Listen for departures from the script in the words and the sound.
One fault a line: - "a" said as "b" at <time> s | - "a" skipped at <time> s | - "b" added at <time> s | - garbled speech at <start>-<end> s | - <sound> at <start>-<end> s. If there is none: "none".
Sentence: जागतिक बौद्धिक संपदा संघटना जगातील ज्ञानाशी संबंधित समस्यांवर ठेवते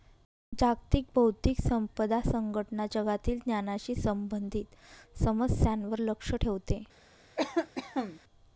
- "लक्ष" added at 6.0 s
- cough at 7.4-8.2 s